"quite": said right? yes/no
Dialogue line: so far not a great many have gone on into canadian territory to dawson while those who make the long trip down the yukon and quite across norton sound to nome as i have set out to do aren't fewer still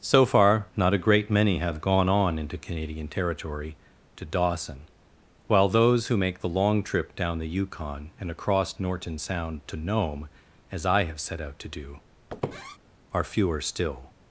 no